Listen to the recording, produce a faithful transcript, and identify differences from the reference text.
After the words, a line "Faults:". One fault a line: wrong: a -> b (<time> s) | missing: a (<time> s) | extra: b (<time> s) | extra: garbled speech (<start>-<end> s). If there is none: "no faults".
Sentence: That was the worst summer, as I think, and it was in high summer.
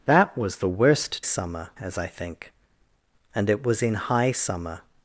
That was the worst summer, as I think, and it was in high summer.
Faults:
no faults